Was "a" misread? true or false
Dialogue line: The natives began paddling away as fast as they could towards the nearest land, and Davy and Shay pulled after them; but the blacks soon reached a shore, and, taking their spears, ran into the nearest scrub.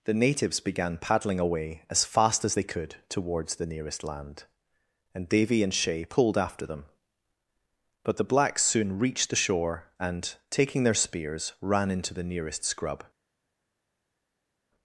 true